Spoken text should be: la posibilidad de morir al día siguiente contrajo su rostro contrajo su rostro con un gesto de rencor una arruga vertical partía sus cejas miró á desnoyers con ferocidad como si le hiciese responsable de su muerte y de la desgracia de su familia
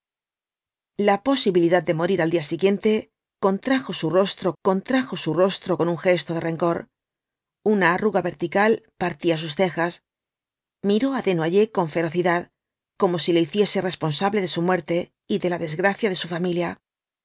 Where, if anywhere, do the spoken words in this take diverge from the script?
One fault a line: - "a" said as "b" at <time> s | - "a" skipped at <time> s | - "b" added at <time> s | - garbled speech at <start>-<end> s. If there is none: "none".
none